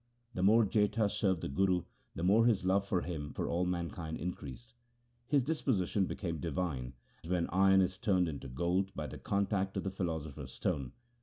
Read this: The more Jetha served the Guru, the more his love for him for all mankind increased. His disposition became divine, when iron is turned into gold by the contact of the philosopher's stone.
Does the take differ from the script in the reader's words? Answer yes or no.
no